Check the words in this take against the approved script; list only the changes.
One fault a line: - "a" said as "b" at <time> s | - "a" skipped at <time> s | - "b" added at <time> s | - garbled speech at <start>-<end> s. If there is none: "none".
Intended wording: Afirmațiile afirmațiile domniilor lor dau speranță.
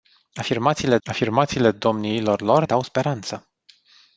none